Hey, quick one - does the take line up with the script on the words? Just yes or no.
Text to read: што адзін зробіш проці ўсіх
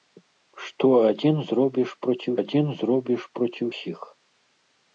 no